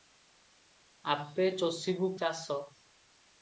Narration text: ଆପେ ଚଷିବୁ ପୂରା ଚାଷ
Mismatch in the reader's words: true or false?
true